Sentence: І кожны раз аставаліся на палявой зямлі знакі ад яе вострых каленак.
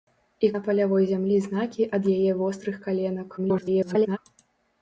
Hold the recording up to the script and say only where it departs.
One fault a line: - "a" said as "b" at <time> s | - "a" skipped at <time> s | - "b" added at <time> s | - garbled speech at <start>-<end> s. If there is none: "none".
- "кожны раз аставаліся" skipped at 0.5 s
- garbled speech at 3.4-4.2 s